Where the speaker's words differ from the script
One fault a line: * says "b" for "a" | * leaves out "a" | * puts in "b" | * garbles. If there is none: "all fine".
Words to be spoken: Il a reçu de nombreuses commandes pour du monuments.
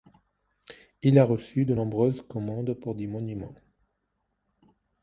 * says "des" for "du"